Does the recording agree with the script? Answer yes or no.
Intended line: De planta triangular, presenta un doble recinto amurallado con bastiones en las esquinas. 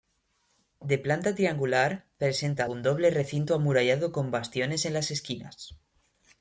yes